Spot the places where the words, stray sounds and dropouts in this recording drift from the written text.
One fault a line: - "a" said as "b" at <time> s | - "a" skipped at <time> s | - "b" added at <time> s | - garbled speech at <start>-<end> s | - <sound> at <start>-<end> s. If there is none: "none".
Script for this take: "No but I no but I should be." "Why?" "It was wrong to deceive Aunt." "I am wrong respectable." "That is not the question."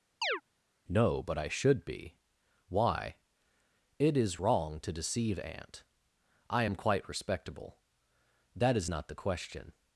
- chirp at 0.2-0.4 s
- "no but I" skipped at 1.5 s
- "was" said as "is" at 4.2 s
- "wrong" said as "quite" at 6.7 s